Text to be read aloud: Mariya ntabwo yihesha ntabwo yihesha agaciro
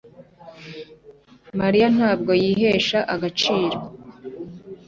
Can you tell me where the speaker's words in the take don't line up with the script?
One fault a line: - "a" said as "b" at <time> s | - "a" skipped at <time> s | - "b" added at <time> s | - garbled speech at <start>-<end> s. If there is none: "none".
- "ntabwo yihesha" skipped at 3.0 s